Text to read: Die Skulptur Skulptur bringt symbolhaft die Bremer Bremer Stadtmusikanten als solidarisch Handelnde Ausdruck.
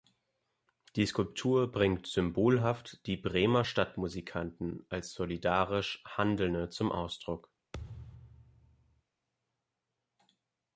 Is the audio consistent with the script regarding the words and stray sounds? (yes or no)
no